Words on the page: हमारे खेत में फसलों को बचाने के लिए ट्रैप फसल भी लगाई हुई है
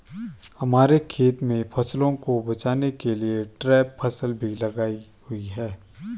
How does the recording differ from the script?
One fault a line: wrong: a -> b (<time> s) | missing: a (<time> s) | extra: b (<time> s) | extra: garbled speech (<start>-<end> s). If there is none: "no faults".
no faults